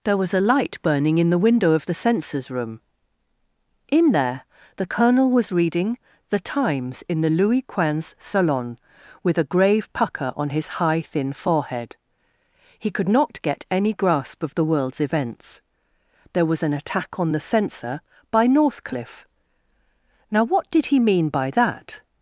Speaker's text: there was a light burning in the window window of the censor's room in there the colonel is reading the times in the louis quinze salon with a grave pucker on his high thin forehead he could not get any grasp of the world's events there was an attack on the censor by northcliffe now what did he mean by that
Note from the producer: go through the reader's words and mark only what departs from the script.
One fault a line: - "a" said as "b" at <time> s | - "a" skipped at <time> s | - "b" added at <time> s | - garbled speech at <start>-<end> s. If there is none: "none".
- "window" skipped at 1.7 s
- "is" said as "was" at 5.3 s